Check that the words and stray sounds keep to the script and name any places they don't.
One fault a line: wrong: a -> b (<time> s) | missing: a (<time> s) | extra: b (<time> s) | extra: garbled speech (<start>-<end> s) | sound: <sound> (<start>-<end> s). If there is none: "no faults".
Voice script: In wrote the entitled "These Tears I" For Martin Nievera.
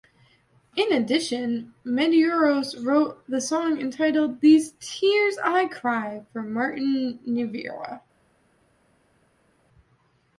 extra: addition Medeiros (0.9 s)
extra: song (3.4 s)
extra: Cry (5.7 s)